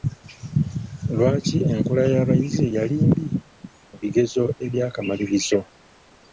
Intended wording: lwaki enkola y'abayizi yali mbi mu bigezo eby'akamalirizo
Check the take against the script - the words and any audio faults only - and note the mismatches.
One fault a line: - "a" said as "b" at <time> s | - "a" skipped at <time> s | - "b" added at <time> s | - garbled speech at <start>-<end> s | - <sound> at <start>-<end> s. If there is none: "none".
none